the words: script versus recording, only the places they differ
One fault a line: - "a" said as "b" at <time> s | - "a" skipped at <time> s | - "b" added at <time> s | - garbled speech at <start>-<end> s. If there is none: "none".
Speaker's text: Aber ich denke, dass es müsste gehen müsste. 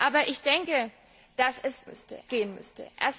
none